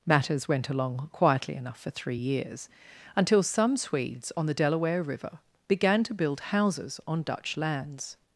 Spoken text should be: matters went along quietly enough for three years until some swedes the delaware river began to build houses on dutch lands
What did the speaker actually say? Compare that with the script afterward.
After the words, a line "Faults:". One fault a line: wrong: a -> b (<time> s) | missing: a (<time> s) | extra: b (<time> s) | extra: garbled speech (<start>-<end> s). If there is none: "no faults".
matters went along quietly enough for three years until some swedes on the delaware river began to build houses on dutch lands
Faults:
extra: on (4.4 s)